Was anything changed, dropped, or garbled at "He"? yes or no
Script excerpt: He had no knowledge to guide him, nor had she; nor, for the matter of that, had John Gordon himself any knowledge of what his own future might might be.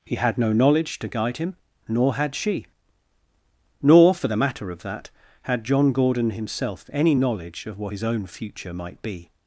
no